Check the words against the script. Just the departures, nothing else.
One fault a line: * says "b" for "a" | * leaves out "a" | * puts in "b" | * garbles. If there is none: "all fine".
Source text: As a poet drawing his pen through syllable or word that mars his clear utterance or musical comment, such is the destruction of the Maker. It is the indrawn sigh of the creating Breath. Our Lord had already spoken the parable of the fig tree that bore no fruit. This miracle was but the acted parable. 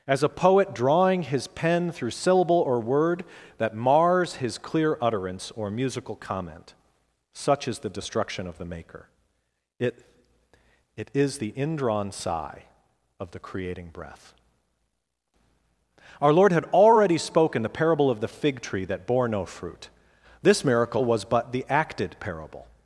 * puts in "It"